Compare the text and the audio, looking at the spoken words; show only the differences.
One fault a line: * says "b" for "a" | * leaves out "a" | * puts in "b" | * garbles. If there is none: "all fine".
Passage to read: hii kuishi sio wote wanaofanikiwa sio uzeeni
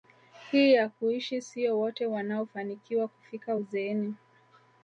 * puts in "ya"
* says "kufika" for "sio"